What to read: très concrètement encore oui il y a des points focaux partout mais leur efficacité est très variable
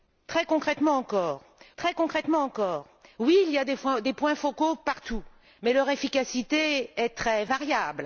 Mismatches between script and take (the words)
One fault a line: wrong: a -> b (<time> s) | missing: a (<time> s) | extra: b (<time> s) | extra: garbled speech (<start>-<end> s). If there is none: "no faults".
extra: très concrètement encore (1.8 s)